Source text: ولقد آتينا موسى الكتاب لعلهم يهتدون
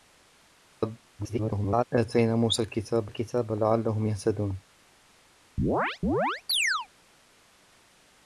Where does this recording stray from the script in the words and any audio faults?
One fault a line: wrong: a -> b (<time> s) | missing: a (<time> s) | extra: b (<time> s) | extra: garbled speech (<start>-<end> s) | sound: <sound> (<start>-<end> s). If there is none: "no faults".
extra: garbled speech (1.2-1.8 s)
extra: الكتاب (3.1 s)
sound: chirp (5.6-6.9 s)